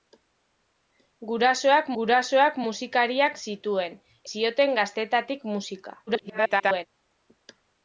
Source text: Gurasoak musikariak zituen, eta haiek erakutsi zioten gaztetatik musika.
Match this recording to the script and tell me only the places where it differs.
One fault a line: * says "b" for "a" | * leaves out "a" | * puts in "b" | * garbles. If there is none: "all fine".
* puts in "gurasoak"
* leaves out "eta haiek erakutsi"
* garbles